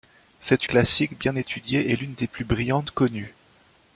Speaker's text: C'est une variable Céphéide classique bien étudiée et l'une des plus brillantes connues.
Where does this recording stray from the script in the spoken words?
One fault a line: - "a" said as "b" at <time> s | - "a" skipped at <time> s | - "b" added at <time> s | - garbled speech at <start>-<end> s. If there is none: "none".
- "une variable Céphéide" skipped at 0.7 s